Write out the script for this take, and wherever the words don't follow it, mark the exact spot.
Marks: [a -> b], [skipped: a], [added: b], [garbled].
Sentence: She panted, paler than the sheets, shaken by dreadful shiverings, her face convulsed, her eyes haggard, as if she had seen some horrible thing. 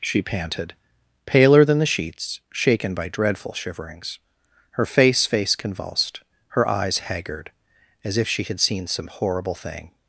She panted, paler than the sheets, shaken by dreadful shiverings, her face [added: face] convulsed, her eyes haggard, as if she had seen some horrible thing.